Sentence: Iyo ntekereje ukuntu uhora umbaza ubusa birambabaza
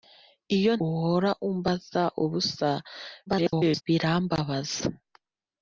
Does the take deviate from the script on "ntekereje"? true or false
true